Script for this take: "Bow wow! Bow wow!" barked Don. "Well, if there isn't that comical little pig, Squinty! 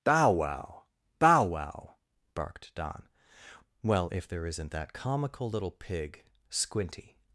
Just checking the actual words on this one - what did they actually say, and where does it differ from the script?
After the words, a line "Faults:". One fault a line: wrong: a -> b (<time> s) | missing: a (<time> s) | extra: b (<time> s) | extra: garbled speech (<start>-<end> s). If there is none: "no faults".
"Bow wow! Bow wow!" barked Don. "Well, if there isn't that comical little pig, Squinty!
Faults:
no faults